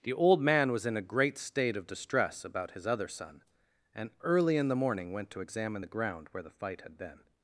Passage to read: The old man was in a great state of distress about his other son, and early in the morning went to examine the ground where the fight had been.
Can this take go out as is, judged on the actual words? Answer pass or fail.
pass